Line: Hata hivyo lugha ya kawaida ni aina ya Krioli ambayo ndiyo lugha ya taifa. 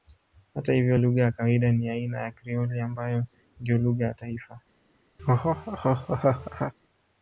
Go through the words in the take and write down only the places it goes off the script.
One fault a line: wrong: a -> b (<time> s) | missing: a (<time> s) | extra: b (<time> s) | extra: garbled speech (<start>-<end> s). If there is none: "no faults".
no faults